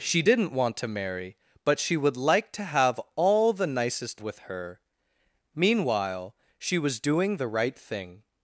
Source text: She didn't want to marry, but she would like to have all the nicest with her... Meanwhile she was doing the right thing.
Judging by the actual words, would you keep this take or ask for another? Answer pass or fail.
pass